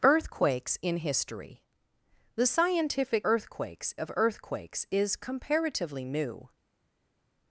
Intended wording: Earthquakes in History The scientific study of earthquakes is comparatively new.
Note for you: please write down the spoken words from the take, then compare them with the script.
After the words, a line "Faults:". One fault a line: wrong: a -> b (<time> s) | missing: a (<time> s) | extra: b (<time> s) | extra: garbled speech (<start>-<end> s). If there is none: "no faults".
Earthquakes in History The scientific earthquakes of earthquakes is comparatively new.
Faults:
wrong: study -> earthquakes (3.2 s)